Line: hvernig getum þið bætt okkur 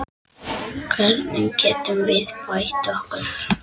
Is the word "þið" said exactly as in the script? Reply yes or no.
no